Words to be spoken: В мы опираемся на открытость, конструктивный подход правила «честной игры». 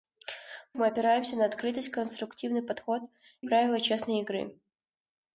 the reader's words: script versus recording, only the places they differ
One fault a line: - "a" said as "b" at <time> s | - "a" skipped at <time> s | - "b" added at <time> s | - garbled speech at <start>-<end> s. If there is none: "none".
none